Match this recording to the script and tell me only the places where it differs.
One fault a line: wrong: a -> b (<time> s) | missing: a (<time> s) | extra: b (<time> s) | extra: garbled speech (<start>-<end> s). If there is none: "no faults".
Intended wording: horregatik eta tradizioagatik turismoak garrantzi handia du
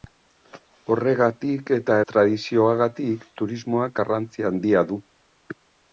no faults